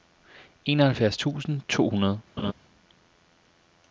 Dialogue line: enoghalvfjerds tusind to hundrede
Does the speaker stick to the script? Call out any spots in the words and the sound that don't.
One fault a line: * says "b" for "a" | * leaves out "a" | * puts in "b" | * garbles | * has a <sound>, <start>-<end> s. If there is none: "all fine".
* has a laugh, 2.4-2.5 s